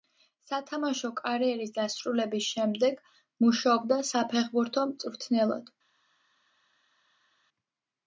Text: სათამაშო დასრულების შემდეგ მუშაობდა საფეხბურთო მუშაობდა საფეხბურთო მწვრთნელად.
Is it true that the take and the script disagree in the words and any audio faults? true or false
true